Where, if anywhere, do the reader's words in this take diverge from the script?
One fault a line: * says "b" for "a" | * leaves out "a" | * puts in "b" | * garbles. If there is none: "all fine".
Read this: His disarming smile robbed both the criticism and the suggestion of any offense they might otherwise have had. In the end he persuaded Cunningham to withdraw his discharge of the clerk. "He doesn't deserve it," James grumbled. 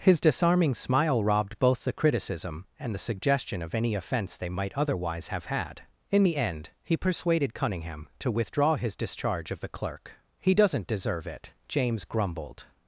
all fine